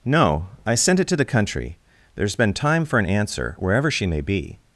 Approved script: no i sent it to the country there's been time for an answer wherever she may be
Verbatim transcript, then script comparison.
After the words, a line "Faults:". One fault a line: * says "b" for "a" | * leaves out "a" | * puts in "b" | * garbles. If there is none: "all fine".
no i sent it to the country there's been time for an answer wherever she may be
Faults:
all fine